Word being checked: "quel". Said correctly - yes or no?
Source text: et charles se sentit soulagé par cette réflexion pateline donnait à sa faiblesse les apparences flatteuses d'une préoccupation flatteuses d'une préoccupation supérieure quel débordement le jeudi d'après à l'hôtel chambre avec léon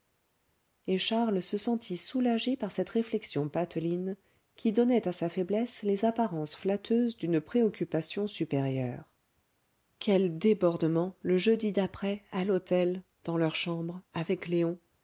yes